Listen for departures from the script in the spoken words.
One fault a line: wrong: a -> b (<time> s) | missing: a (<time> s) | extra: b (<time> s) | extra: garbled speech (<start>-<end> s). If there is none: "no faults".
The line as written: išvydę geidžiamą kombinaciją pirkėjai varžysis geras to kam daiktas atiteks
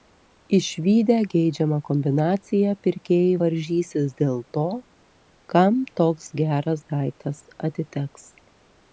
wrong: geras -> dėl (4.2 s)
extra: toks geras (6.0 s)